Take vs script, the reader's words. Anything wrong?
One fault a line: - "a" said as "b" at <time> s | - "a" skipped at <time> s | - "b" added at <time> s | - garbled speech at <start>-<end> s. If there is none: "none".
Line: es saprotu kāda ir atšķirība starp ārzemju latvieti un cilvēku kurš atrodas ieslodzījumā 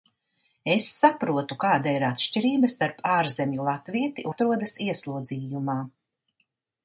- "un cilvēku kurš" skipped at 4.3 s